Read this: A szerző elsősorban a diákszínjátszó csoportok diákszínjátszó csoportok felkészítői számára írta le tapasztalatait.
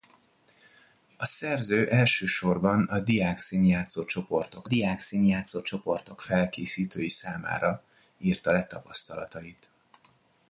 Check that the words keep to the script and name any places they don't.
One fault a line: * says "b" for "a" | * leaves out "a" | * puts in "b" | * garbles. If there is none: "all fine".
all fine